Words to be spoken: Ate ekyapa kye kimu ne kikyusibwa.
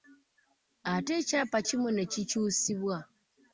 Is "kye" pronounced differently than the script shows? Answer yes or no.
yes